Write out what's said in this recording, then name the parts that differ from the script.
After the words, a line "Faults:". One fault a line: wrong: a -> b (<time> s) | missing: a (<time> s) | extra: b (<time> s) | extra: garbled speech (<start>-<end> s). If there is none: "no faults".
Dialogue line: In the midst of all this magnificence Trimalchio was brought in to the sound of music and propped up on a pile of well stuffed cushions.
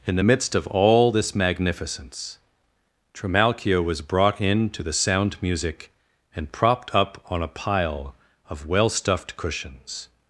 In the midst of all this magnificence Trimalchio was brought in to the sound music and propped up on a pile of well stuffed cushions.
Faults:
missing: of (5.4 s)